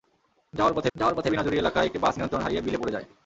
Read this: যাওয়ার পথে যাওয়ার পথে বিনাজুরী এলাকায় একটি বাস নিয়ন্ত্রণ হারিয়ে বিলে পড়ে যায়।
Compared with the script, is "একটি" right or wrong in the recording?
right